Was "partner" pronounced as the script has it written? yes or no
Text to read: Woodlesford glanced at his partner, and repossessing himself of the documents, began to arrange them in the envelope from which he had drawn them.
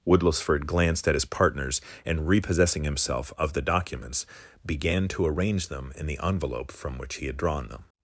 no